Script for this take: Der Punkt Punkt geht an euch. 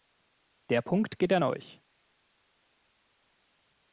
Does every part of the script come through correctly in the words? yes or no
no